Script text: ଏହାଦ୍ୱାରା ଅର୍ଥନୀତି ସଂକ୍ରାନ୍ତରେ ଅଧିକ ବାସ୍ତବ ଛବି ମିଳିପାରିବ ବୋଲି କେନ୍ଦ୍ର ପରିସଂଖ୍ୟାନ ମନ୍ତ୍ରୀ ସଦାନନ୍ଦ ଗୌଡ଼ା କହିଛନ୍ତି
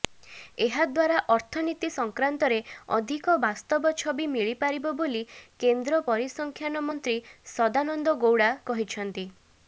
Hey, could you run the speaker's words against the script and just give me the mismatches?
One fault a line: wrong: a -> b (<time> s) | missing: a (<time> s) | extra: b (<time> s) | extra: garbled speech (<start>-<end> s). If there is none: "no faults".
no faults